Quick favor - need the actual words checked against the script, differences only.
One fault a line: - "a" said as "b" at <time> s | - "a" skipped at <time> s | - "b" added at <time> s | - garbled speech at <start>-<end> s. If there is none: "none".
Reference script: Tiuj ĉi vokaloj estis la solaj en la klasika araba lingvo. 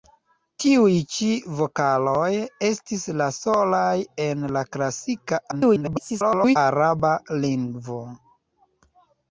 - garbled speech at 5.5-6.6 s